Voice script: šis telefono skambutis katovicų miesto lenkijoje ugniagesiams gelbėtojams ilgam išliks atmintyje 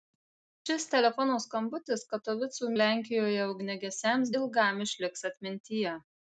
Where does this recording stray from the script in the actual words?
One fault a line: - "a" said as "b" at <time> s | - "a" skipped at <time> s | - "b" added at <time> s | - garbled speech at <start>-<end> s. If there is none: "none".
- "miesto" skipped at 2.7 s
- "gelbėtojams" skipped at 4.3 s